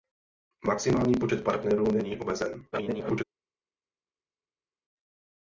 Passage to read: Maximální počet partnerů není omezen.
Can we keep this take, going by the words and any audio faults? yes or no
no